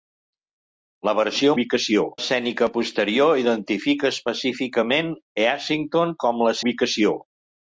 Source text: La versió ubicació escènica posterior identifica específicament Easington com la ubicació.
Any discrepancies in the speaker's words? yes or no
no